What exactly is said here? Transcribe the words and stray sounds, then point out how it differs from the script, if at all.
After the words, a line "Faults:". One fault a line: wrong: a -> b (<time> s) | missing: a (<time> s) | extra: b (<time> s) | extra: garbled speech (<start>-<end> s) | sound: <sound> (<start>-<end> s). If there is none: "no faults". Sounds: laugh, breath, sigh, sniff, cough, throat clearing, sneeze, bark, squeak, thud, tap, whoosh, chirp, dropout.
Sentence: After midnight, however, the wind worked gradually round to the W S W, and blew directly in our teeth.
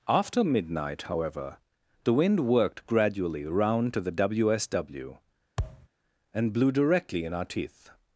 After midnight, however, the wind worked gradually round to the W S W, and blew directly in our teeth.
Faults:
sound: thud (5.6-5.9 s)